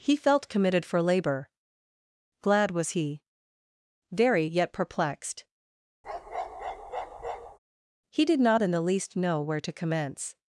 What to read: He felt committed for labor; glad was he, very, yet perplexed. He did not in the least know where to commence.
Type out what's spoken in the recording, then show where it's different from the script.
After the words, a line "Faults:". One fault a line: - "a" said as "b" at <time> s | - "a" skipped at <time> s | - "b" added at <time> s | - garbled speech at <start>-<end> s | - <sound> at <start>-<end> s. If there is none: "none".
He felt committed for labor; glad was he, very, yet perplexed. He did not in the least know where to commence.
Faults:
- bark at 6.0-7.6 s